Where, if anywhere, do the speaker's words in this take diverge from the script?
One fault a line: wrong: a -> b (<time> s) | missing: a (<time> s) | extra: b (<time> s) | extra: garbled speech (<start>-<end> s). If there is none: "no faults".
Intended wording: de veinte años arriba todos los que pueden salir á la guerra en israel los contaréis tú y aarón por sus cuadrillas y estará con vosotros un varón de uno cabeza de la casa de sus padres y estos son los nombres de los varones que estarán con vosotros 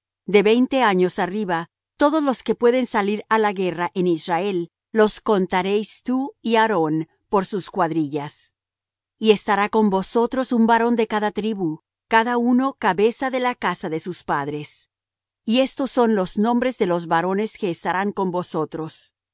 extra: cada tribu cada (11.1 s)